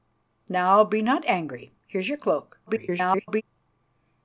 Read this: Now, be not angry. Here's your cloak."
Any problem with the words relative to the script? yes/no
yes